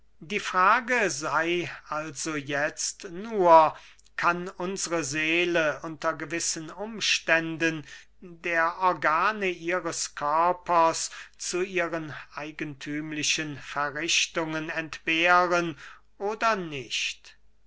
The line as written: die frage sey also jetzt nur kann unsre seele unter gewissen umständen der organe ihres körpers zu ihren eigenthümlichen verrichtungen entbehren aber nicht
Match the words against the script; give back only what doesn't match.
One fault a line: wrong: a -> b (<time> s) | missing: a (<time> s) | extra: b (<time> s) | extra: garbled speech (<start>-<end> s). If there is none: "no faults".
wrong: aber -> oder (16.2 s)